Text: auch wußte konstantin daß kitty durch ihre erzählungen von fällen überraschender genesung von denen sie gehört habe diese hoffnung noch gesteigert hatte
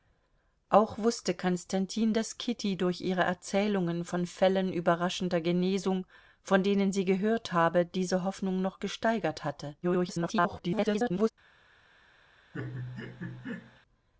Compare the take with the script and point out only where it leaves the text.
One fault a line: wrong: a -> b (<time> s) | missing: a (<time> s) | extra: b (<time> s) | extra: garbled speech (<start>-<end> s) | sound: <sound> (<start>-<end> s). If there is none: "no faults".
extra: garbled speech (9.8-11.3 s)
sound: laugh (12.5-13.8 s)